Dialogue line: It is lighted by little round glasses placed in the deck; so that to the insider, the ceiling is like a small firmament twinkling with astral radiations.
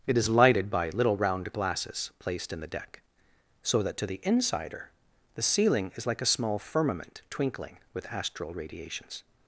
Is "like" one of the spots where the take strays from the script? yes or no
no